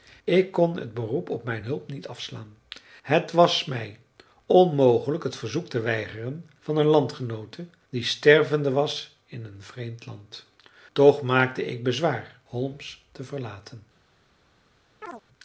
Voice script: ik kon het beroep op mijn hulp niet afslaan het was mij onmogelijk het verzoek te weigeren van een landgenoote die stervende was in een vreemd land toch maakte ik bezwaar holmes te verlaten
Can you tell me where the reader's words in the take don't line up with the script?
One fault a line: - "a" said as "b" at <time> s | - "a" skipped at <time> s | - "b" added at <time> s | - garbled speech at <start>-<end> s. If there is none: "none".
none